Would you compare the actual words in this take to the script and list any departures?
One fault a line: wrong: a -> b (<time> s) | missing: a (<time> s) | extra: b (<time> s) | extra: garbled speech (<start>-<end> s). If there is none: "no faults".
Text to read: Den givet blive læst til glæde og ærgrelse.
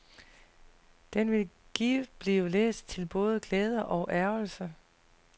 extra: vil (1.3 s)
extra: både (3.0 s)